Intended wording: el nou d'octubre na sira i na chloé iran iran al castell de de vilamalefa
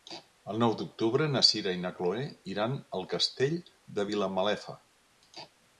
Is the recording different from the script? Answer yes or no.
yes